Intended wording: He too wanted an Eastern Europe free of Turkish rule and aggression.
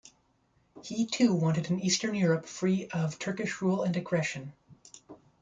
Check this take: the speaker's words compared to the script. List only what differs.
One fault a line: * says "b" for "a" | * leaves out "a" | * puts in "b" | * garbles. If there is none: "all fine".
all fine